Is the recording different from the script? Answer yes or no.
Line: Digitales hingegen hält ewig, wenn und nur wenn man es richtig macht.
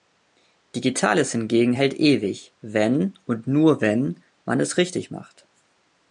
no